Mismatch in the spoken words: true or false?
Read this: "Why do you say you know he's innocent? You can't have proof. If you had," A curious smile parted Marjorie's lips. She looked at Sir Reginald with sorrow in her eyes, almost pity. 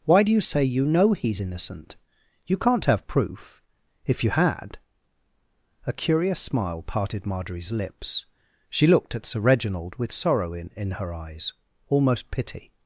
true